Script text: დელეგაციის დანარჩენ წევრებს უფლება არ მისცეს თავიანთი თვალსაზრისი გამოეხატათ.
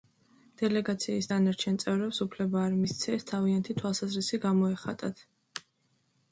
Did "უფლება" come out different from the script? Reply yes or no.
no